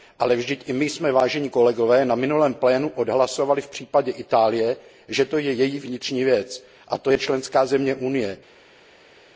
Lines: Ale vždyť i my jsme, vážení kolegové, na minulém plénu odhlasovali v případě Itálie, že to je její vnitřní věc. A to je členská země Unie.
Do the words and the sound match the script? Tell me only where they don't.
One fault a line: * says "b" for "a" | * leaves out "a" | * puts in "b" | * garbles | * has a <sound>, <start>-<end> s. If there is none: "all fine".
all fine